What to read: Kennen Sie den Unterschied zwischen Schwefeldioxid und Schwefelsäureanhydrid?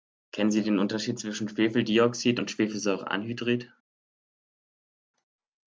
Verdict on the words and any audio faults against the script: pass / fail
pass